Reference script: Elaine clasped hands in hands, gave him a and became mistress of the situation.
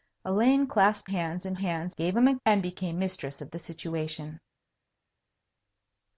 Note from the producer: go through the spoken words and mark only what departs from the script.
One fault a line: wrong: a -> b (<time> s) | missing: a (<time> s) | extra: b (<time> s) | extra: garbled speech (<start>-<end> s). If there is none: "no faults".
no faults